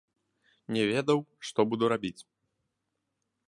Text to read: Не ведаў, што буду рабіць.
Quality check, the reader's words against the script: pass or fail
pass